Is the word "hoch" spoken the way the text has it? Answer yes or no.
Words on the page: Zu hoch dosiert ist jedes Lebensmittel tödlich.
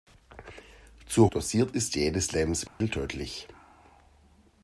no